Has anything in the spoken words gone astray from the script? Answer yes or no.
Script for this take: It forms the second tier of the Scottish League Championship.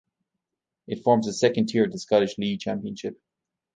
no